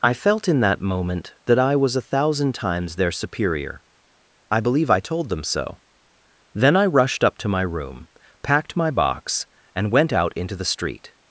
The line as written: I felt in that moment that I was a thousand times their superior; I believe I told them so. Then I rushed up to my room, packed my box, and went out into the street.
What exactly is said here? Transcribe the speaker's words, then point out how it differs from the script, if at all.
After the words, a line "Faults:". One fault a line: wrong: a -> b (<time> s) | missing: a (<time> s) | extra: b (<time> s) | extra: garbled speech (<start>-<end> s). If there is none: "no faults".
I felt in that moment that I was a thousand times their superior; I believe I told them so. Then I rushed up to my room, packed my box, and went out into the street.
Faults:
no faults